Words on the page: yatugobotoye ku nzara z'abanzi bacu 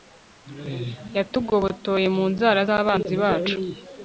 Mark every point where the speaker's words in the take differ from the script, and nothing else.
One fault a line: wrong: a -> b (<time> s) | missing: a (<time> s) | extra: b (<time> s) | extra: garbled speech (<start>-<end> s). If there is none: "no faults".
wrong: ku -> mu (2.1 s)